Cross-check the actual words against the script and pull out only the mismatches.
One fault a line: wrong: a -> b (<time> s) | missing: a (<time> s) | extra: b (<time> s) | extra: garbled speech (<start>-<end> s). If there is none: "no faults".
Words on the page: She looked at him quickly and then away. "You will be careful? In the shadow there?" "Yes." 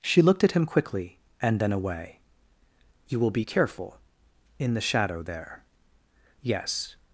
no faults